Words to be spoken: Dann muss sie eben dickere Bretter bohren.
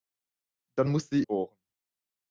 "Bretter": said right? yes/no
no